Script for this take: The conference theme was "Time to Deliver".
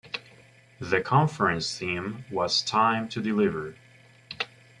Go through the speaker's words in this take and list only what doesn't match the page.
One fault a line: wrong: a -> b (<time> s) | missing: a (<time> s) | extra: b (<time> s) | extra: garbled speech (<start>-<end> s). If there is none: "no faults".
no faults